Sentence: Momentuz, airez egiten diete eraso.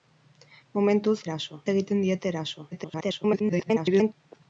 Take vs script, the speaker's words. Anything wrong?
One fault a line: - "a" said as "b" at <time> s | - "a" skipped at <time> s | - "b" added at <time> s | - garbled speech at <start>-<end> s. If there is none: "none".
- "airez" said as "eraso" at 1.3 s
- garbled speech at 2.7-4.1 s